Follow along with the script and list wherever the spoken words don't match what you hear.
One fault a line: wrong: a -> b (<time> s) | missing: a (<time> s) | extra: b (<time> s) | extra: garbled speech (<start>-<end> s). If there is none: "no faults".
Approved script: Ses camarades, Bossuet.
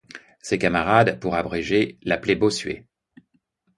extra: pour abréger l'appelaient (1.2 s)